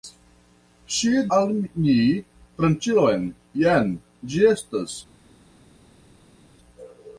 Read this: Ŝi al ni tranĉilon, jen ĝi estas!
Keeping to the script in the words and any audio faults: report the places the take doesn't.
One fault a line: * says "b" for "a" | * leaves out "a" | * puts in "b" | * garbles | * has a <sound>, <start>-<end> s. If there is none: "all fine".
all fine